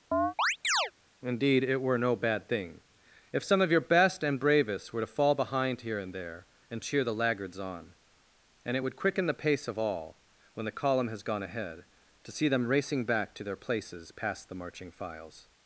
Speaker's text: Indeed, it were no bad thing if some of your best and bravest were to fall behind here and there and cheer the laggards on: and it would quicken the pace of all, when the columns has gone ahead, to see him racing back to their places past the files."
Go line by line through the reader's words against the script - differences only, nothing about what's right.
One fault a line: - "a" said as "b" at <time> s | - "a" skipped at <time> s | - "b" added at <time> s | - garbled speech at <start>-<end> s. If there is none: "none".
- "columns" said as "column" at 10.8 s
- "him" said as "them" at 12.5 s
- "marching" added at 14.5 s